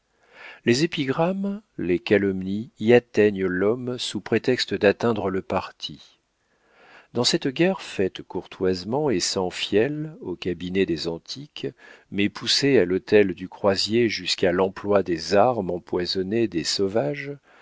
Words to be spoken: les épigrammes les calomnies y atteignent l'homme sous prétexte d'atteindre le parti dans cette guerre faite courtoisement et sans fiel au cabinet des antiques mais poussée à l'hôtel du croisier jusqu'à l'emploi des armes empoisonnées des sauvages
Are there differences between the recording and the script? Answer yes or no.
no